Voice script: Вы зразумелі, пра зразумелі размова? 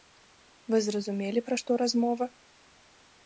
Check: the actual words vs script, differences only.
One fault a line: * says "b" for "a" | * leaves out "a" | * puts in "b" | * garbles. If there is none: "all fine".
* says "што" for "зразумелі"